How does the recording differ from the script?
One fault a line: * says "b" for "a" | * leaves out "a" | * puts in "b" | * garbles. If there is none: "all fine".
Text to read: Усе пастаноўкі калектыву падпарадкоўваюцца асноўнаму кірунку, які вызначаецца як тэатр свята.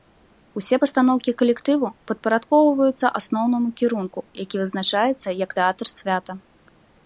all fine